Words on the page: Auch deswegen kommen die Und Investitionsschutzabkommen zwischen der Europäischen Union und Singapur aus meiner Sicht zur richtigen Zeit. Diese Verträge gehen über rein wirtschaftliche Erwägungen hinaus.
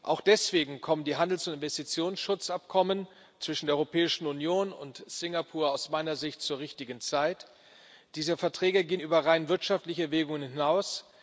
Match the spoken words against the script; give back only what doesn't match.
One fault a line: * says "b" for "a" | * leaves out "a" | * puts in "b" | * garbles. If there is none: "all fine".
* puts in "Handels"